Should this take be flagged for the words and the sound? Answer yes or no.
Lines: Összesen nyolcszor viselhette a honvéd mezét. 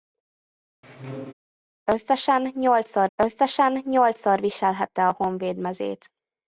yes